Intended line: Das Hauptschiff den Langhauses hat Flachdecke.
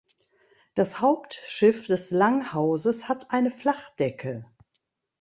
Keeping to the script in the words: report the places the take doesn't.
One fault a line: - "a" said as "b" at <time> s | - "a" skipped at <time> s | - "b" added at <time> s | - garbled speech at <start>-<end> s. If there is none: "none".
- "den" said as "des" at 1.9 s
- "eine" added at 3.3 s